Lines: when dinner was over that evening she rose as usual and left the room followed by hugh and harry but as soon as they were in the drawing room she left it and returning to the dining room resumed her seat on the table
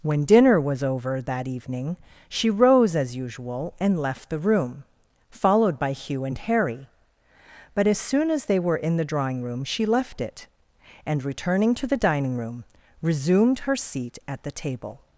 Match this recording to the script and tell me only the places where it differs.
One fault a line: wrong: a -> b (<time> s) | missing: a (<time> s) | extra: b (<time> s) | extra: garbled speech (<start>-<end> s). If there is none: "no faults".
wrong: on -> at (14.3 s)